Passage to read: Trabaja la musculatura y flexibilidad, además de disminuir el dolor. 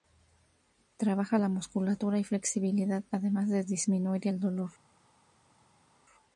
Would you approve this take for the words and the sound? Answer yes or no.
yes